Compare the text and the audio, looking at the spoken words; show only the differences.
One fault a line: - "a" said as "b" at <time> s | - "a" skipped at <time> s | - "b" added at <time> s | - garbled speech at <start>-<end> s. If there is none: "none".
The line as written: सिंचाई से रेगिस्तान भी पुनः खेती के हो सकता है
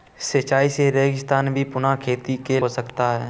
none